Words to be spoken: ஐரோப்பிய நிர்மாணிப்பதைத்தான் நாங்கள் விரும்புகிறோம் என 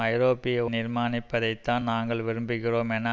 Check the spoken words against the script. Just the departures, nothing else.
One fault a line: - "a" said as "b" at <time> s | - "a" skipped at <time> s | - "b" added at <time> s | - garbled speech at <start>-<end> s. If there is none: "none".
none